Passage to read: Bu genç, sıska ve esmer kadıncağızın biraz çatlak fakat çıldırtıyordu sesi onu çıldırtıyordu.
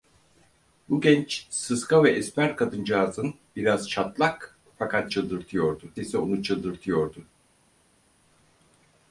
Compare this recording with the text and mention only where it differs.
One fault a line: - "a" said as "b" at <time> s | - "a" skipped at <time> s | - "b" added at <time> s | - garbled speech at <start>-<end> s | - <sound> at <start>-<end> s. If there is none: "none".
none